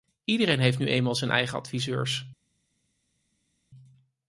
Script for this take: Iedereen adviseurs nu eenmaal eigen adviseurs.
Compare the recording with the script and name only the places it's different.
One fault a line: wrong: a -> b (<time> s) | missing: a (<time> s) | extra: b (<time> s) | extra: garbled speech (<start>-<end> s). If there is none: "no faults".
wrong: adviseurs -> heeft (0.6 s)
extra: zijn (1.1 s)